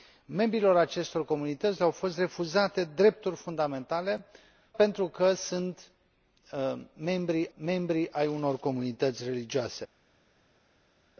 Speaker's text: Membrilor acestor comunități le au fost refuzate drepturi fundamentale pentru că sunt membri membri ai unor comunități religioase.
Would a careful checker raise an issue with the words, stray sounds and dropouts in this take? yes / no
no